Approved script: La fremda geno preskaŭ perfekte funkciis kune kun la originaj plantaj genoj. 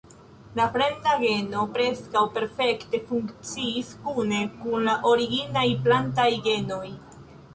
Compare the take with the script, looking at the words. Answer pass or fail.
pass